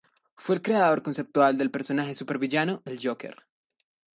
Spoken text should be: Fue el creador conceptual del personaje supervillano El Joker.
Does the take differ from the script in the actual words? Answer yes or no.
no